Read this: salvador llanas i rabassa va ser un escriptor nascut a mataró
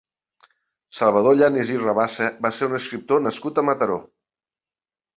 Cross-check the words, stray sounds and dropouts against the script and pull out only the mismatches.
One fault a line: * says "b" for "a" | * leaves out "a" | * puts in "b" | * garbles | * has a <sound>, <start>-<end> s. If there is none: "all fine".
all fine